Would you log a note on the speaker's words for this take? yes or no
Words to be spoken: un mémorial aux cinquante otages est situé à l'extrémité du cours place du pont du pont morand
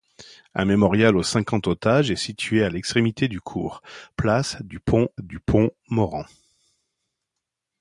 no